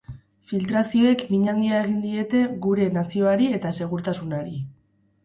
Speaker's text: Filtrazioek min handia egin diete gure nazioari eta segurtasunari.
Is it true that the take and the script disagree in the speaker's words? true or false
false